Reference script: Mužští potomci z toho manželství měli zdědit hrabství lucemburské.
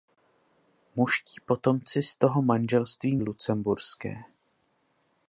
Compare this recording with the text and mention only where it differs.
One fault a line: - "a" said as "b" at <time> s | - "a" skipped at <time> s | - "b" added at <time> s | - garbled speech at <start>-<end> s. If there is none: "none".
- "měli zdědit hrabství" skipped at 3.1 s